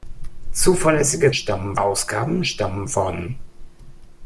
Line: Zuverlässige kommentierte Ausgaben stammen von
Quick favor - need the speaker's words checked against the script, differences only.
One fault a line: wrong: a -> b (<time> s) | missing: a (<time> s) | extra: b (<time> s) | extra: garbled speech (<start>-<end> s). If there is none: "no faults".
wrong: kommentierte -> stammen (1.3 s)